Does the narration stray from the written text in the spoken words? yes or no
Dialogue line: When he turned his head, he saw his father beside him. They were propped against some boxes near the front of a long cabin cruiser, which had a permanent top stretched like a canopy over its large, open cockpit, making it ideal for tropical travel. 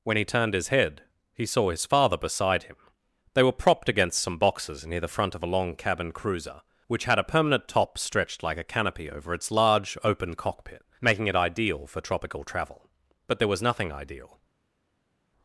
yes